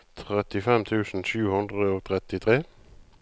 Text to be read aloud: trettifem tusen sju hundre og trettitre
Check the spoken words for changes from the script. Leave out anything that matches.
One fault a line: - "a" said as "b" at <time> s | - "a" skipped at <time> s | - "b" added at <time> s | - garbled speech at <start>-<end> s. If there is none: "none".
none